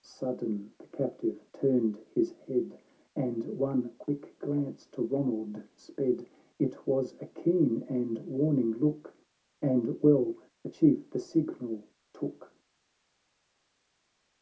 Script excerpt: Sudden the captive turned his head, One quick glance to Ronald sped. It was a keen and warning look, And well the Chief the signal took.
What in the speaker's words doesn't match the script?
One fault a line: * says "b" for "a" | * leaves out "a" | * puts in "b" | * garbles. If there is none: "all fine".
* puts in "And"